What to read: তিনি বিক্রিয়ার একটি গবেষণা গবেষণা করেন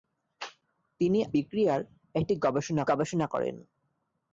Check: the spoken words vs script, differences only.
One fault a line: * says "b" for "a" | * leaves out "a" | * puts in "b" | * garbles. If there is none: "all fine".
all fine